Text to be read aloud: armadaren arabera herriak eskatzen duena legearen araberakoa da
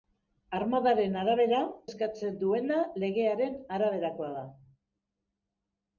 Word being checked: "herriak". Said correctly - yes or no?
no